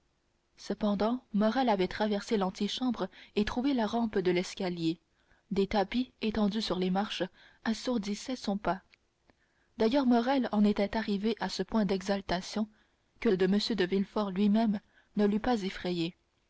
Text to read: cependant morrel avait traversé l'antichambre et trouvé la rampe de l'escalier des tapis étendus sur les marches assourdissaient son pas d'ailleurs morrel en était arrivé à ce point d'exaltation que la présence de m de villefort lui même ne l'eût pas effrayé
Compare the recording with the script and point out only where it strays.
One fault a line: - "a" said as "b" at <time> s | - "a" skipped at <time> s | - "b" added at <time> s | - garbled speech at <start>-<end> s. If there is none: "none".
- "la présence" skipped at 13.3 s